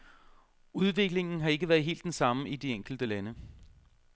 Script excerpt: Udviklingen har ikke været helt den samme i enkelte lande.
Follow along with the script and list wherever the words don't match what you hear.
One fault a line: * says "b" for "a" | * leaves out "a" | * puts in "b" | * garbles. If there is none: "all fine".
* puts in "de"